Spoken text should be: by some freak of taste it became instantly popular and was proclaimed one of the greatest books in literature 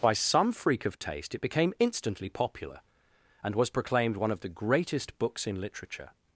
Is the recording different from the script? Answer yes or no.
no